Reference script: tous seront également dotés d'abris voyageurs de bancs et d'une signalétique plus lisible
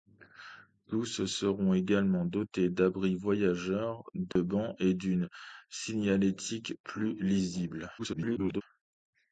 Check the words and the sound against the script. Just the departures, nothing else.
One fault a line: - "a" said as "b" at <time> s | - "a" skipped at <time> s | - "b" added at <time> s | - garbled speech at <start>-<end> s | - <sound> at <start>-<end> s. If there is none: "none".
- dropout at 4.3-4.4 s
- garbled speech at 8.0-8.6 s